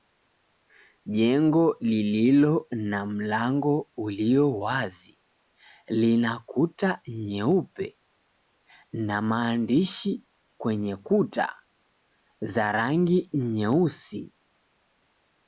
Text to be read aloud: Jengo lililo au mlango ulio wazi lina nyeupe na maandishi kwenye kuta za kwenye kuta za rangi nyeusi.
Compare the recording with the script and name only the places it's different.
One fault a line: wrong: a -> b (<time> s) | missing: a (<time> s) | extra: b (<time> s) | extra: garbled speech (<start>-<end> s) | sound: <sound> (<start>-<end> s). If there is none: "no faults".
wrong: au -> na (2.7 s)
extra: kuta (6.4 s)
missing: kwenye kuta za (12.7 s)